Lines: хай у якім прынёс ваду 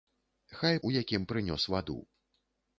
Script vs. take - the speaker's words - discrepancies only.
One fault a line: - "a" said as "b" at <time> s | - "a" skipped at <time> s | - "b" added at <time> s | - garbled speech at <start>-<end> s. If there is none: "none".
none